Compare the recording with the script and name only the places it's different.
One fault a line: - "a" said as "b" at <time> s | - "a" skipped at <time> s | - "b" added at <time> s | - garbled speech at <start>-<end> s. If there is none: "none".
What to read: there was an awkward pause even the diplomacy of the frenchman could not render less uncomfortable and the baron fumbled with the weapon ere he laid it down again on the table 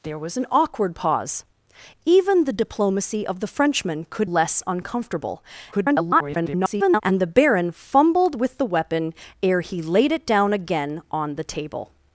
- "not render" skipped at 4.3 s
- garbled speech at 5.7-7.0 s